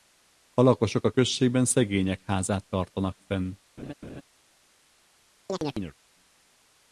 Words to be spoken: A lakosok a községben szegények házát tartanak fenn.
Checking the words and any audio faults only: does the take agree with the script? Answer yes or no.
no